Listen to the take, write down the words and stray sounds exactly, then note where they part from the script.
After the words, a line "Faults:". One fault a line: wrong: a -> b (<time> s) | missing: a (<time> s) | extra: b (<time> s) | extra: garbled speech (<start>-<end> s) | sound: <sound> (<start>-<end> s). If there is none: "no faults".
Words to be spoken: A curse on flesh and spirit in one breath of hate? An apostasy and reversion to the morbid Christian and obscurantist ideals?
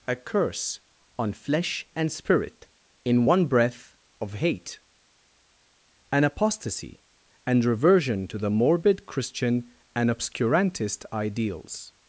A curse on flesh and spirit in one breath of hate? An apostasy and reversion to the morbid Christian and obscurantist ideals?
Faults:
no faults